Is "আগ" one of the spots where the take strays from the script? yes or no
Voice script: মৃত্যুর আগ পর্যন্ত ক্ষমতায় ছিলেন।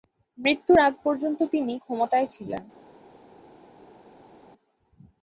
no